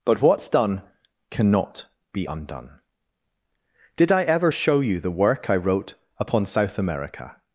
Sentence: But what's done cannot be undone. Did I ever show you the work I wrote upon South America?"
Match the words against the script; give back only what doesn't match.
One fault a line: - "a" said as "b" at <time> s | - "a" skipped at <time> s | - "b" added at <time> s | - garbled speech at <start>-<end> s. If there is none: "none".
none